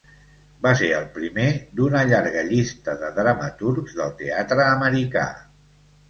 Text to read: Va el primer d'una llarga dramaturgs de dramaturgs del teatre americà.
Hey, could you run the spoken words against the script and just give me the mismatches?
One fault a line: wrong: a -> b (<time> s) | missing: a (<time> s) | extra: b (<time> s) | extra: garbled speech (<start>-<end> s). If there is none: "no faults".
extra: ser (0.8 s)
wrong: dramaturgs -> llista (2.5 s)